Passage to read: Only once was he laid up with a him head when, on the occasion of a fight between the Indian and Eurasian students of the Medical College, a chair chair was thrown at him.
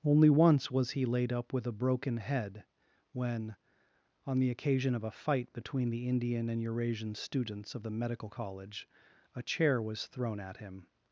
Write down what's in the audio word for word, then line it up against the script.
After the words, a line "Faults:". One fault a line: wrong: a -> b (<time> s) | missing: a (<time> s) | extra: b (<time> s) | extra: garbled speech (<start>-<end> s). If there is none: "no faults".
Only once was he laid up with a broken head when, on the occasion of a fight between the Indian and Eurasian students of the Medical College, a chair was thrown at him.
Faults:
wrong: him -> broken (1.7 s)
missing: chair (9.8 s)